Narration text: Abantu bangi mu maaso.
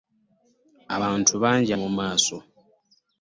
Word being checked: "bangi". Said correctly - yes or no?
yes